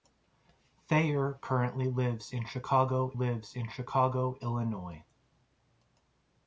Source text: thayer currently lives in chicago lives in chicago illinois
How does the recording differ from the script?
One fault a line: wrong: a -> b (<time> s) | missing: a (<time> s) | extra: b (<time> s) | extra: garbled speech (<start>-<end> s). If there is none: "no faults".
no faults